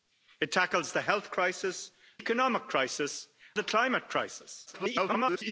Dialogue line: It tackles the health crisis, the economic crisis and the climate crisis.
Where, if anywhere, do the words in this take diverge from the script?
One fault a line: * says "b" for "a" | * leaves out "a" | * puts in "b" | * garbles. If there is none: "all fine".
* leaves out "the"
* leaves out "and"
* garbles